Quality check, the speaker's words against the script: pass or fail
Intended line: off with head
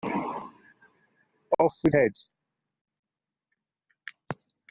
pass